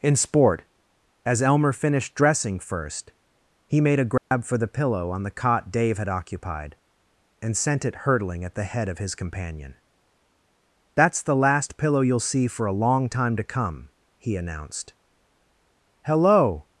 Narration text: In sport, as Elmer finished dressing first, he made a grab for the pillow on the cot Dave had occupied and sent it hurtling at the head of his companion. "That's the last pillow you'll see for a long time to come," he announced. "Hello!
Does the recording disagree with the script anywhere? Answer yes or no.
no